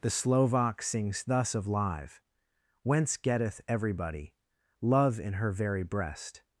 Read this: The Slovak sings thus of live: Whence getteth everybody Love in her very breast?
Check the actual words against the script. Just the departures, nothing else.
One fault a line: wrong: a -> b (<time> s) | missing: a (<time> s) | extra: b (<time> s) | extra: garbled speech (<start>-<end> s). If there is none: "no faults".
no faults